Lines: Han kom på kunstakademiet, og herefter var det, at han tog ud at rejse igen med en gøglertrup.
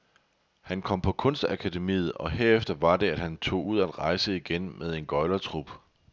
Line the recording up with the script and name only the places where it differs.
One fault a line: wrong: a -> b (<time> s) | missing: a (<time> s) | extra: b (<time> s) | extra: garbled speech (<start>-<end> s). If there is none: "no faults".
no faults